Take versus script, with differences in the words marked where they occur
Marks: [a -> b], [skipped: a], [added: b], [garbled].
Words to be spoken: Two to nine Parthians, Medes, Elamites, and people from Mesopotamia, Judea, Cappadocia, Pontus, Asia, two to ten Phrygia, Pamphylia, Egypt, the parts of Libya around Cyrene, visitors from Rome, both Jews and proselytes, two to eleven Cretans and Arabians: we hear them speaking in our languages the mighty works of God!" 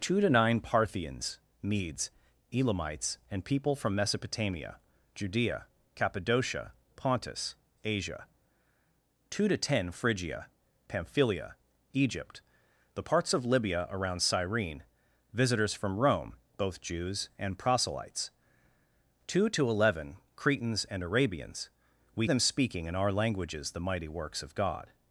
Two to nine Parthians, Medes, Elamites, and people from Mesopotamia, Judea, Cappadocia, Pontus, Asia, two to ten Phrygia, Pamphylia, Egypt, the parts of Libya around Cyrene, visitors from Rome, both Jews and proselytes, two to eleven Cretans and Arabians: we [skipped: hear] them speaking in our languages the mighty works of God!"